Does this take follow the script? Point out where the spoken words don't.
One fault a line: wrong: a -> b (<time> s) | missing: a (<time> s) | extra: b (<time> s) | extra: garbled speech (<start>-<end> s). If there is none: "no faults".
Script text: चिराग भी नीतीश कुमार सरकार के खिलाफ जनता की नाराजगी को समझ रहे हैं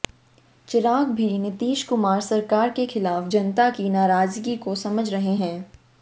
no faults